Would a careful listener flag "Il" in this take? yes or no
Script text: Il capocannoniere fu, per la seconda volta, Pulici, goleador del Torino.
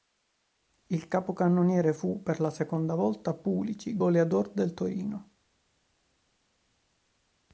no